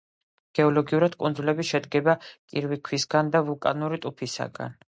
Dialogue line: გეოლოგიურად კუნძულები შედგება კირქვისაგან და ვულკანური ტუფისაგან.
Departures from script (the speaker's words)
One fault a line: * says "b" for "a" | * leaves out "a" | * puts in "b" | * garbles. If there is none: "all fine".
all fine